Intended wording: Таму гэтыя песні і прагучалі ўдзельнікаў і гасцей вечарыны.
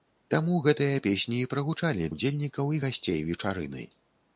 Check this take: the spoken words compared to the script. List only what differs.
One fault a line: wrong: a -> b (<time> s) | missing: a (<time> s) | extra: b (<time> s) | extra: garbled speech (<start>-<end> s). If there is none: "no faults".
no faults